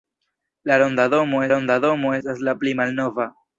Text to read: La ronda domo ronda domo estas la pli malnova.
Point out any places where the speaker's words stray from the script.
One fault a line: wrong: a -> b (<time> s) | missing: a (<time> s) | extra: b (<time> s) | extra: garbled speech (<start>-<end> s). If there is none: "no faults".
no faults